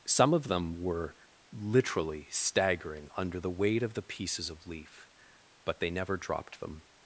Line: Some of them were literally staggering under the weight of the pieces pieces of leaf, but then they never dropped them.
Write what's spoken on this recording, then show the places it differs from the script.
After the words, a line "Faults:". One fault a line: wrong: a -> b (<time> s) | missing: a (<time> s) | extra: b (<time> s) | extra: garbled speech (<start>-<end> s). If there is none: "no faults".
Some of them were literally staggering under the weight of the pieces of leaf, but they never dropped them.
Faults:
missing: pieces (4.5 s)
missing: then (5.8 s)